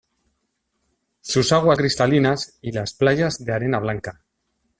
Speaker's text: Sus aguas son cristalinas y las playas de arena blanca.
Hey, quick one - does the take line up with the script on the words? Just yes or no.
no